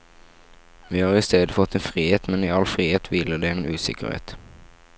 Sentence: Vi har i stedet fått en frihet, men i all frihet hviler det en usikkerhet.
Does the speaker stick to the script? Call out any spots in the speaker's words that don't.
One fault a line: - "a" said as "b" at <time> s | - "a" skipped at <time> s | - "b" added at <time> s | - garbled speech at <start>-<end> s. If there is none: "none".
none